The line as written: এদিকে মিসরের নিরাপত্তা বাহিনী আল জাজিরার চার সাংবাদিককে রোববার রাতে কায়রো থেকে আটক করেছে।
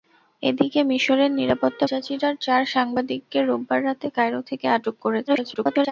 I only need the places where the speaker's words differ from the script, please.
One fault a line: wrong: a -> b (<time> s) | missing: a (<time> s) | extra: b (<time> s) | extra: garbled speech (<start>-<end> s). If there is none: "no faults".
missing: বাহিনী আল (1.9 s)
extra: garbled speech (5.3-5.9 s)